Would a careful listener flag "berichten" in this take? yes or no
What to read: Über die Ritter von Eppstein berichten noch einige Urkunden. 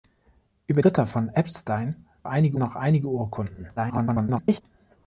yes